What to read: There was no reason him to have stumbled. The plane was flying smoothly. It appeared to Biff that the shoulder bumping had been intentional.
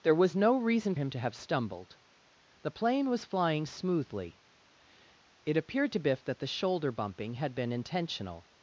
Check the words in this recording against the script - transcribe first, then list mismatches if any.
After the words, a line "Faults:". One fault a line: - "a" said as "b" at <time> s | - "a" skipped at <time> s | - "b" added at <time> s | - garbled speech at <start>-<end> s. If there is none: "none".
There was no reason him to have stumbled. The plane was flying smoothly. It appeared to Biff that the shoulder bumping had been intentional.
Faults:
none